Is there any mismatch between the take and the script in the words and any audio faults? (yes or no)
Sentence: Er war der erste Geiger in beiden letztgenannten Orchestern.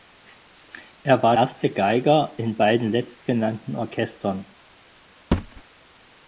yes